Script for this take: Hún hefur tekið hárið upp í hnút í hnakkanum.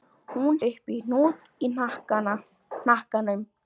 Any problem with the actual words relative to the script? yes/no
yes